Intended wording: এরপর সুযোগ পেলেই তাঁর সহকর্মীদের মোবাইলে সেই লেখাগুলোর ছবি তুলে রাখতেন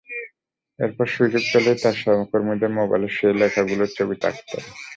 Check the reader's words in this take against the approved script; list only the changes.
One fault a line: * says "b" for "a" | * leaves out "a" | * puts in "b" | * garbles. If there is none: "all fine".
* leaves out "তুলে"